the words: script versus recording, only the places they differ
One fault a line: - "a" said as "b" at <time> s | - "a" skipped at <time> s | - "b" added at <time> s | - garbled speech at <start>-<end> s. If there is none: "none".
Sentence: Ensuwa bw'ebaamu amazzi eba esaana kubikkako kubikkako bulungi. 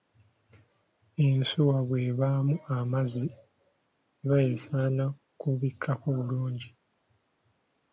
- "kubikkako" skipped at 6.1 s